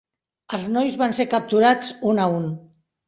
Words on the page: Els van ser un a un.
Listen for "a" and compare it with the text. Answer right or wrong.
right